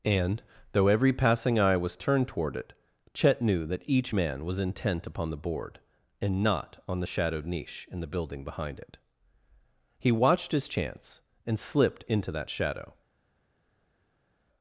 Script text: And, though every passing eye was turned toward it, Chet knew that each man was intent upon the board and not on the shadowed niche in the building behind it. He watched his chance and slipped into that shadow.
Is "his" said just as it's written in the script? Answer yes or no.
yes